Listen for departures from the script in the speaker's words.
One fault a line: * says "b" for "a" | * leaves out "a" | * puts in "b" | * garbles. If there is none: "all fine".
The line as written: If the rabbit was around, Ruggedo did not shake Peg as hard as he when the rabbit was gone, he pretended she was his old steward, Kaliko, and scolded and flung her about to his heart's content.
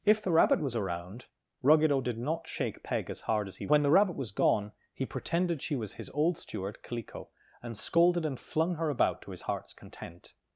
all fine